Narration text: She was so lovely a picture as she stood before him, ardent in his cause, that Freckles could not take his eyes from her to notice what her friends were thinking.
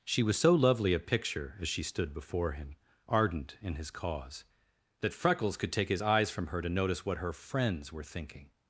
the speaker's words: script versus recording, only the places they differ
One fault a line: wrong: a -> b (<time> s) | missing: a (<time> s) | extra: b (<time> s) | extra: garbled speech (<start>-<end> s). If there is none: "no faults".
missing: not (5.7 s)